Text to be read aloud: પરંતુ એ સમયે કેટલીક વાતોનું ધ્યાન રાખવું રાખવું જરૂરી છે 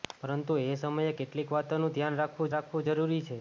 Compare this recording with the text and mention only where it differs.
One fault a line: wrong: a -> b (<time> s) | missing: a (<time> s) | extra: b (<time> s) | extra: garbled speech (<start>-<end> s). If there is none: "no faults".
no faults